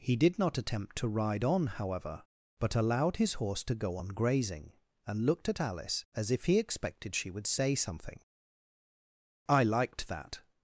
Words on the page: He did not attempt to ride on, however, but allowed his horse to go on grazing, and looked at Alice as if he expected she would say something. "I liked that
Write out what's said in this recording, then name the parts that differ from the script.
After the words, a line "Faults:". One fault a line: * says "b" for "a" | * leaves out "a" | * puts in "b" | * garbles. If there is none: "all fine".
He did not attempt to ride on, however, but allowed his horse to go on grazing, and looked at Alice as if he expected she would say something. "I liked that
Faults:
all fine